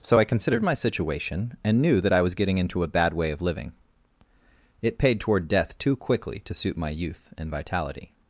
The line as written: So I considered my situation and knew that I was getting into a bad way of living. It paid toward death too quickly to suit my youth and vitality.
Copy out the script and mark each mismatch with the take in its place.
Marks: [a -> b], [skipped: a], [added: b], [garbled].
So I considered my situation and knew that I was getting into a bad way of living. It paid toward death too quickly to suit my youth and vitality.